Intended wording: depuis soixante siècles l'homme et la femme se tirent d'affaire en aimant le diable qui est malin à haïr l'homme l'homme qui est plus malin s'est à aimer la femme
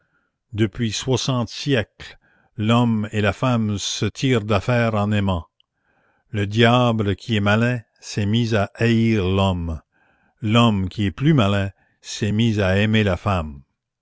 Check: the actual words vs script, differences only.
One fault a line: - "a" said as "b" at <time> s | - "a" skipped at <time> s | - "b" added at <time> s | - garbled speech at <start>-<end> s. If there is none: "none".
- "s'est mis" added at 8.0 s
- "mis" added at 12.3 s